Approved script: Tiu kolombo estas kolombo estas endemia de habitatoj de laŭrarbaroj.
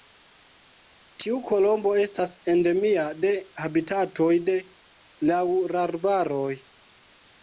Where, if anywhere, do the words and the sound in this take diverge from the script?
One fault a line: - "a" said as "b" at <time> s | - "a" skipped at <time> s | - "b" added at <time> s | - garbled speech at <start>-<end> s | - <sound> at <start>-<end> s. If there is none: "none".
- "kolombo estas" skipped at 2.3 s